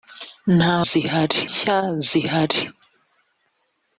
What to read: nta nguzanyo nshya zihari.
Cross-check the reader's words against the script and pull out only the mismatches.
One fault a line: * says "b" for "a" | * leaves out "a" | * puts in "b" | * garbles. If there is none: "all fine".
* says "zihari" for "nguzanyo"